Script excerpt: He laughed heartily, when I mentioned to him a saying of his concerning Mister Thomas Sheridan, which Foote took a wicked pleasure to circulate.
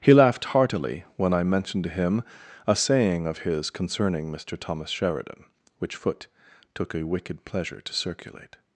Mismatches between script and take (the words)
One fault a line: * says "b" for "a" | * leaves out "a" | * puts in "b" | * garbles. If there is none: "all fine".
all fine